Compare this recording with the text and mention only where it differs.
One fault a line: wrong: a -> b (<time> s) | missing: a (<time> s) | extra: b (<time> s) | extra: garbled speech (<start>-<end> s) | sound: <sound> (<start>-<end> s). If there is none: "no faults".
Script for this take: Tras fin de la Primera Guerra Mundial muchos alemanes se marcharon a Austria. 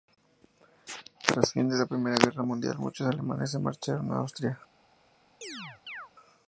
sound: chirp (5.4-6.1 s)